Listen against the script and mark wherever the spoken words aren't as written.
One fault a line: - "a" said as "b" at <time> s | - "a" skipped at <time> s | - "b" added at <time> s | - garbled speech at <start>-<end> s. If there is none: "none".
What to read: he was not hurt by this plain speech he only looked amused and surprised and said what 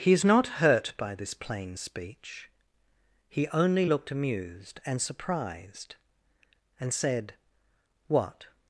- "was" said as "is" at 0.1 s